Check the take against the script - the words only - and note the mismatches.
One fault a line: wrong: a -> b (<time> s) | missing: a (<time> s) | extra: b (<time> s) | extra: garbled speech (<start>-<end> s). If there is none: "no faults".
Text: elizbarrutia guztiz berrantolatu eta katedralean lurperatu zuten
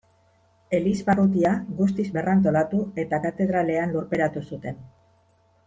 no faults